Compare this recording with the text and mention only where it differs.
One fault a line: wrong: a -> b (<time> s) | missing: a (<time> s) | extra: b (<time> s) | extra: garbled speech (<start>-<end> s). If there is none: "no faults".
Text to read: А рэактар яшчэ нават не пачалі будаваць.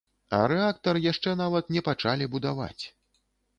no faults